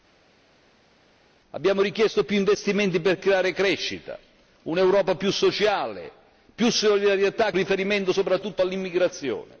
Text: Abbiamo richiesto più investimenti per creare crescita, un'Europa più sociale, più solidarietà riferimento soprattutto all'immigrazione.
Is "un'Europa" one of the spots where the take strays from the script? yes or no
no